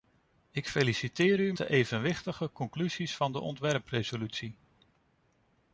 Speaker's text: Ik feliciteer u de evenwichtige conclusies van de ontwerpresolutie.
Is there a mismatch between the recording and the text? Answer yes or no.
no